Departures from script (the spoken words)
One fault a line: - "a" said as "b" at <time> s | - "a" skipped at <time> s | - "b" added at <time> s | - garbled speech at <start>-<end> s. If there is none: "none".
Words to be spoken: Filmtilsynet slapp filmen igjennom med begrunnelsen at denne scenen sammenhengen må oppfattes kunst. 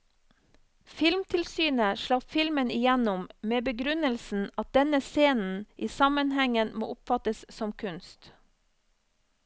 - "i" added at 5.7 s
- "som" added at 7.6 s